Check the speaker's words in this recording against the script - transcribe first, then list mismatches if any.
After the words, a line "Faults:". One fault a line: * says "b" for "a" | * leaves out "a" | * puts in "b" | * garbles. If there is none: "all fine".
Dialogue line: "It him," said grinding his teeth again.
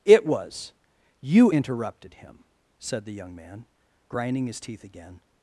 "It was you interrupted him," said the young man, grinding his teeth again.
Faults:
* puts in "was you interrupted"
* puts in "the young man"